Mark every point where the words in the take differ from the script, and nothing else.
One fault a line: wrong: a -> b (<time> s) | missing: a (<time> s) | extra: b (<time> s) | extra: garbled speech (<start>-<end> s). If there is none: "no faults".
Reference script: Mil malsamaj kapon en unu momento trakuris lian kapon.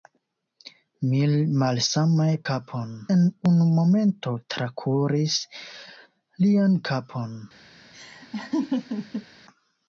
no faults